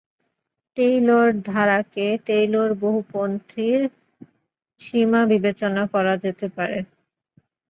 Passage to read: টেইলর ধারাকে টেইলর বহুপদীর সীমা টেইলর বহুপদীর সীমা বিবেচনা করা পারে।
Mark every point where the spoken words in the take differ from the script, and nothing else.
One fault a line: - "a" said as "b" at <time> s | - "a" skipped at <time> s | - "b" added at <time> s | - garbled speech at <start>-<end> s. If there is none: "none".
- "টেইলর বহুপদীর সীমা" skipped at 5.2 s
- "যেতে" added at 6.2 s